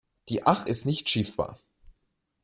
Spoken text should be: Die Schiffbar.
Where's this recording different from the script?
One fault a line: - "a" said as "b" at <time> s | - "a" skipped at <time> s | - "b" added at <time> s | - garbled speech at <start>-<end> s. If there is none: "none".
- "Ach ist nicht" added at 0.4 s